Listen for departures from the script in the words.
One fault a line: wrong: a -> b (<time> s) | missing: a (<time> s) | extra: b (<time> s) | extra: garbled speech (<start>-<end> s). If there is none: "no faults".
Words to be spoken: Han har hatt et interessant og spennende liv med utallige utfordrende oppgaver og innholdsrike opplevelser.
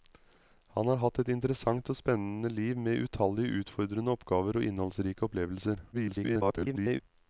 extra: garbled speech (5.9-7.0 s)